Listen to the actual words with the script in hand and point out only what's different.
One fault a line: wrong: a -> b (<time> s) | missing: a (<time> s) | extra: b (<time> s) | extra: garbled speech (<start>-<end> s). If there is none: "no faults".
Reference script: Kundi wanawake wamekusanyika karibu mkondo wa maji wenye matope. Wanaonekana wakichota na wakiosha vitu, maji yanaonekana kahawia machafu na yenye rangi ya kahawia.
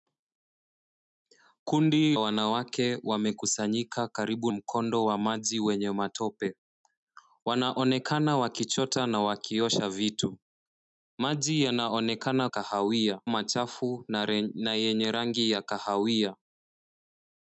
no faults